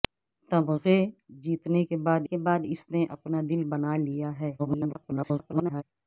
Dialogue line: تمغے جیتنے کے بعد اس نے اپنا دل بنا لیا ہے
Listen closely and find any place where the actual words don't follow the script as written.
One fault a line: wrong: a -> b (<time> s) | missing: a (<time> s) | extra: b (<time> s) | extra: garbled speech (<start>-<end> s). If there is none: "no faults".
extra: کے بعد (2.2 s)
extra: garbled speech (4.6-5.8 s)